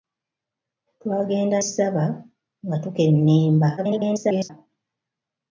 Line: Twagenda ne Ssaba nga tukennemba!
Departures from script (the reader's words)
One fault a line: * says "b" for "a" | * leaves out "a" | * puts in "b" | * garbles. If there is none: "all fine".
* leaves out "ne"
* garbles